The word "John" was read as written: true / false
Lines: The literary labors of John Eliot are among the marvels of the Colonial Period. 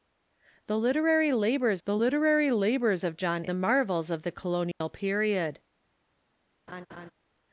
false